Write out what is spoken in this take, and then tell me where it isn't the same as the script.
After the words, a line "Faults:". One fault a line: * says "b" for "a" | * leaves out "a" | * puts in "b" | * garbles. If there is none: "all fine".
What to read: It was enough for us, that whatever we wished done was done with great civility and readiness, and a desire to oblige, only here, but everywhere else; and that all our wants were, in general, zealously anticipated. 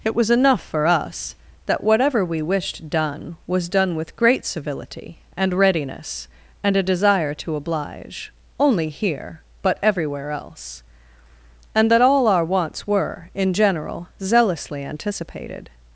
It was enough for us, that whatever we wished done was done with great civility and readiness, and a desire to oblige, only here, but everywhere else; and that all our wants were, in general, zealously anticipated.
Faults:
all fine